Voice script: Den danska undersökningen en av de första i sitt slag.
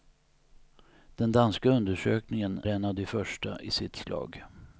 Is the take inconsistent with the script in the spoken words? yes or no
no